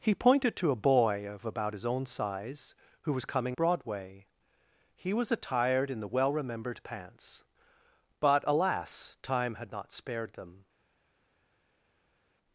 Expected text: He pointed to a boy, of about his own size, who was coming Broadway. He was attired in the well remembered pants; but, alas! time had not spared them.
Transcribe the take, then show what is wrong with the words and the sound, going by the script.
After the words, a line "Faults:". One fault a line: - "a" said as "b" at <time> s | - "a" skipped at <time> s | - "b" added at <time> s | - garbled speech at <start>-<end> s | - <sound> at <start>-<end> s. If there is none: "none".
He pointed to a boy, of about his own size, who was coming Broadway. He was attired in the well remembered pants; but, alas! time had not spared them.
Faults:
none